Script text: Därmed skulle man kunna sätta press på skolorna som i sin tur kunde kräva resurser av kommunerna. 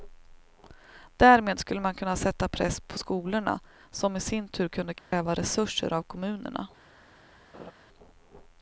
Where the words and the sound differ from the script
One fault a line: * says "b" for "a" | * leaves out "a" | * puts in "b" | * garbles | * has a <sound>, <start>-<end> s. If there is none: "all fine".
* has a dropout, 5.0-5.1 s
* has a laugh, 7.5-7.7 s